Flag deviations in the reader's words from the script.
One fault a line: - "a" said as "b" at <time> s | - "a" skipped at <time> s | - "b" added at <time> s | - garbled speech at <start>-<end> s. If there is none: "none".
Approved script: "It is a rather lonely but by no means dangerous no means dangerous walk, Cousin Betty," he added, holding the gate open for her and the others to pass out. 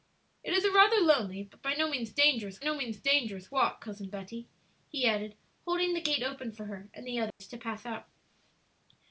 none